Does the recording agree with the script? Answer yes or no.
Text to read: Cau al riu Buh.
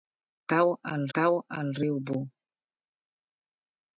no